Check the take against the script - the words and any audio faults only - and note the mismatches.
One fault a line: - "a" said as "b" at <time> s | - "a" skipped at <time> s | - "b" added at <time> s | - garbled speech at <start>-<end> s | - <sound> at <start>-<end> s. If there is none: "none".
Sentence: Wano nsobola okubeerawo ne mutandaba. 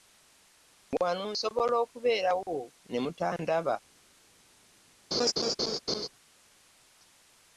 - laugh at 5.1-6.1 s